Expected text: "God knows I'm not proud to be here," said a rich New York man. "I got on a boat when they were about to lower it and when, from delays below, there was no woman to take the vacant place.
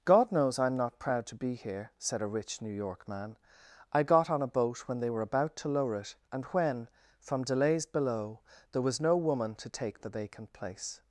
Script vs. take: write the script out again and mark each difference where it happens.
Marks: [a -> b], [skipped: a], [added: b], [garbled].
"God knows I'm not proud to be here," said a rich New York man. "I got on a boat when they were about to lower it and when, from delays below, there was no woman to take the vacant place.